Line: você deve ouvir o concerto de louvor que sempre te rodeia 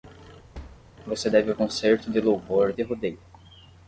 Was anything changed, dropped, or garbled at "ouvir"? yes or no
yes